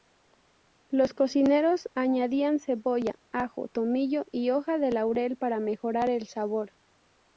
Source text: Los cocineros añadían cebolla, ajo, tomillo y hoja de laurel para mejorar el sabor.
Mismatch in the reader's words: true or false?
false